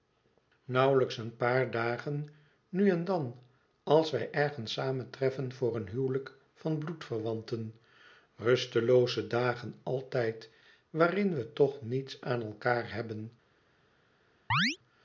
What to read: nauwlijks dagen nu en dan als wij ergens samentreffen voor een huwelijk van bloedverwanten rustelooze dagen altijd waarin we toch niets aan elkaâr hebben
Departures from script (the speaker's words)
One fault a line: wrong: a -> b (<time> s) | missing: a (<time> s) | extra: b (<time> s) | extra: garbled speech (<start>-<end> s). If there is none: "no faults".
extra: een paar (1.2 s)